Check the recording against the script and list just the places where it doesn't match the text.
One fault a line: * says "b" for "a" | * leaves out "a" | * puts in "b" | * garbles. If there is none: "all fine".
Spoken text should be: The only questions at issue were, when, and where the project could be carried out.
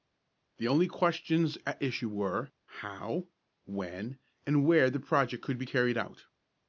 * puts in "how"